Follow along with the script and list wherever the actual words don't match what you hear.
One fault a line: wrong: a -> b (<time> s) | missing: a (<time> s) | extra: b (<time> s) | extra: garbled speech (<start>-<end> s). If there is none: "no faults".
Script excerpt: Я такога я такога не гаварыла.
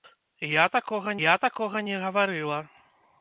no faults